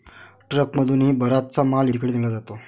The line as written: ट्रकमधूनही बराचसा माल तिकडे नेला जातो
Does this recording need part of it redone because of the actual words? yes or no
no